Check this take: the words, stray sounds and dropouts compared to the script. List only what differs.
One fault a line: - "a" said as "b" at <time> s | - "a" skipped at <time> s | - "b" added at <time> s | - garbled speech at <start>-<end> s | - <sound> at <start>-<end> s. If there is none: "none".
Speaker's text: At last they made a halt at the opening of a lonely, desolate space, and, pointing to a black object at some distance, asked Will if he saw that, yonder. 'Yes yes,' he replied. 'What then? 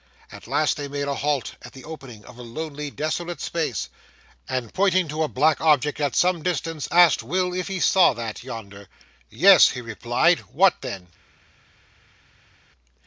- "yes" skipped at 9.7 s